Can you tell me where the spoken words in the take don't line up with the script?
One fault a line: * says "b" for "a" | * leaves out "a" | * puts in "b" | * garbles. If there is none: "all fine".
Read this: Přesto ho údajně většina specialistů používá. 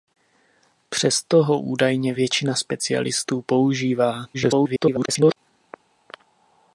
* garbles